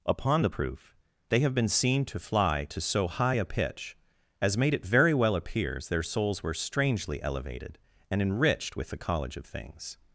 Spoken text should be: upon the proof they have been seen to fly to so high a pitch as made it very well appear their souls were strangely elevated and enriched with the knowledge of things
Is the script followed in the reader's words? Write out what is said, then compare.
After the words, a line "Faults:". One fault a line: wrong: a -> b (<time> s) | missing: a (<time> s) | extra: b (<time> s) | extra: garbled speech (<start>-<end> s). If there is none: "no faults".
upon the proof they have been seen to fly to so high a pitch as made it very well appears their souls were strangely elevated and enriched with the college of things
Faults:
wrong: appear -> appears (5.4 s)
wrong: knowledge -> college (9.0 s)